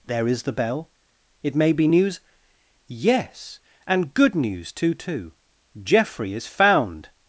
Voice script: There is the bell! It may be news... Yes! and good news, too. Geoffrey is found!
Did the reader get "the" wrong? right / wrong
right